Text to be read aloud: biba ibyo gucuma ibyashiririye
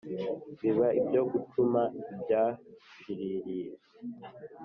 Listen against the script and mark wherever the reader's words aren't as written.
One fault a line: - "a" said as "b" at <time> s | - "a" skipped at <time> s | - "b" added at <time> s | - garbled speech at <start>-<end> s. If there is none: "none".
none